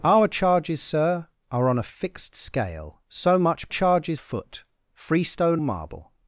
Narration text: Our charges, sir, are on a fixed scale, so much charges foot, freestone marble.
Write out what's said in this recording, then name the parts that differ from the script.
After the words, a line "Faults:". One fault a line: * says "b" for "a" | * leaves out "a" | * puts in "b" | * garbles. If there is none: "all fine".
Our charges, sir, are on a fixed scale, so much charges foot, freestone marble.
Faults:
all fine